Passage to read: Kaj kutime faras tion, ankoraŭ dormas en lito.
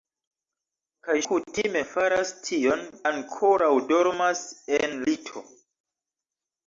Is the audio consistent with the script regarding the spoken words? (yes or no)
yes